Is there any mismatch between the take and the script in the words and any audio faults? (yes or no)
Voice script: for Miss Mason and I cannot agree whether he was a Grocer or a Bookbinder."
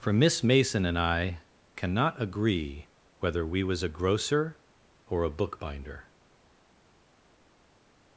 yes